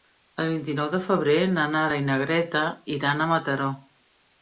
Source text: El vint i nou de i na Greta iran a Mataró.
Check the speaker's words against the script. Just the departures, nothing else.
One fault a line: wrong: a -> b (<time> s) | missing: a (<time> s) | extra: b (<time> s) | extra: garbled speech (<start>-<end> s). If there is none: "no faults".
extra: febrer na Nara (1.0 s)